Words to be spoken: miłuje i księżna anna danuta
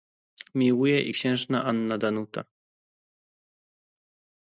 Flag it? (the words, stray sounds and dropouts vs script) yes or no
no